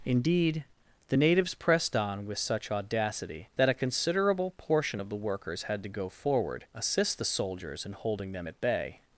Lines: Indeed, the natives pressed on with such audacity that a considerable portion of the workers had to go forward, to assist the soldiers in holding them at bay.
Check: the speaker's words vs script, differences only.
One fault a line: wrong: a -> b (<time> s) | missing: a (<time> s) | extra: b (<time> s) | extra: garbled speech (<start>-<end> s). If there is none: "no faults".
missing: to (6.6 s)